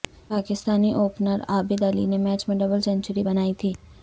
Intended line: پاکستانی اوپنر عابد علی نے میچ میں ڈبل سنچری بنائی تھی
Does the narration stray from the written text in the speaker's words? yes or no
no